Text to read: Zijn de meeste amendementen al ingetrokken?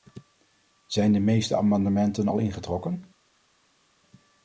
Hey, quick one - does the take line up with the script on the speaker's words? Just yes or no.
yes